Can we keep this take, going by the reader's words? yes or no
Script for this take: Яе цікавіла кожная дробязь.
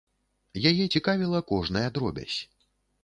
yes